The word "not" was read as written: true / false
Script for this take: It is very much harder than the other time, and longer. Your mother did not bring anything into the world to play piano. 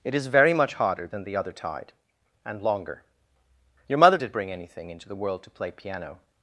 false